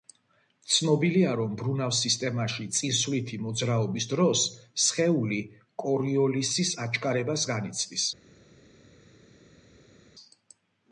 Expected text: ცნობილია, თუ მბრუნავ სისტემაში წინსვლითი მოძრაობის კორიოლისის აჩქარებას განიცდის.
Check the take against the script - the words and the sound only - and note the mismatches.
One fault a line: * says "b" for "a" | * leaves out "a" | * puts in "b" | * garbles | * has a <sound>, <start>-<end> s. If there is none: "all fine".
* says "რომ" for "თუ"
* puts in "დროს სხეული"